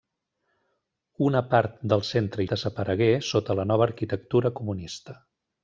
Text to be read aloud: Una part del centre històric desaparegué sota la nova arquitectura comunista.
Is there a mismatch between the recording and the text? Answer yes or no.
yes